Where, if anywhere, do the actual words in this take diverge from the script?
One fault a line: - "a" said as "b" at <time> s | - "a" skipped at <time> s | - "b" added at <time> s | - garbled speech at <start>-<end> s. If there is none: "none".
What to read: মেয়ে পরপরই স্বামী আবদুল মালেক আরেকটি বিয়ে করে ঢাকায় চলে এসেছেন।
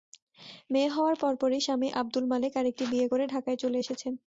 - "হওয়ার" added at 0.9 s